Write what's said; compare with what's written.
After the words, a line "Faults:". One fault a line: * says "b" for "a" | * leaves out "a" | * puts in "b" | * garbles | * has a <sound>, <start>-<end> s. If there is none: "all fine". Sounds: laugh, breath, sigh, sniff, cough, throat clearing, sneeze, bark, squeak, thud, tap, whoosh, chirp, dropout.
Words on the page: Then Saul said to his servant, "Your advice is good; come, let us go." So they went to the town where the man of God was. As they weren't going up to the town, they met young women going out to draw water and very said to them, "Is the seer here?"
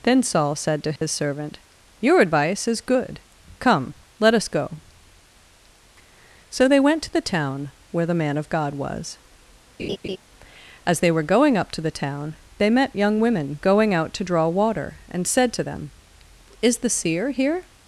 Then Saul said to his servant, "Your advice is good; come, let us go." So they went to the town where the man of God was. As they were going up to the town, they met young women going out to draw water and said to them, "Is the seer here?"
Faults:
* has a dropout, 1.0-1.0 s
* has a laugh, 9.8-10.2 s
* says "were" for "weren't"
* leaves out "very"